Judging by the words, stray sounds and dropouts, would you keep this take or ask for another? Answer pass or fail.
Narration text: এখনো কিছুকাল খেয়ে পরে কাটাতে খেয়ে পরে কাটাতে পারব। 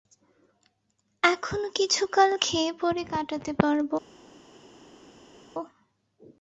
fail